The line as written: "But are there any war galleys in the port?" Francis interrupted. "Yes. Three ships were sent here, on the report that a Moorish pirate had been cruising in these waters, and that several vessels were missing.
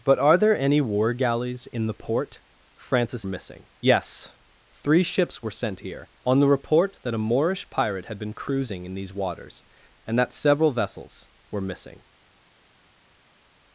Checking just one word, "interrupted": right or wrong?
wrong